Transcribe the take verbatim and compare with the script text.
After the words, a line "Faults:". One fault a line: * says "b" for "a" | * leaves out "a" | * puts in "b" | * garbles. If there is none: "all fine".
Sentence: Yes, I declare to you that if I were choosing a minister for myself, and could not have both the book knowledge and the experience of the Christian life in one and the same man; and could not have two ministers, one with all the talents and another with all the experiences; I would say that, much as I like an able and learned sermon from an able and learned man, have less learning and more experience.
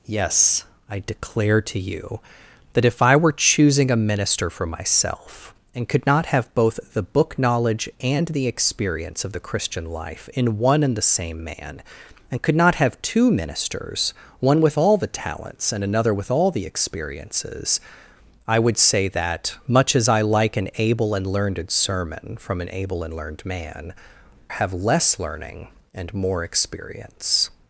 Yes, I declare to you that if I were choosing a minister for myself, and could not have both the book knowledge and the experience of the Christian life in one and the same man; and could not have two ministers, one with all the talents and another with all the experiences; I would say that, much as I like an able and learned sermon from an able and learned man, have less learning and more experience.
Faults:
all fine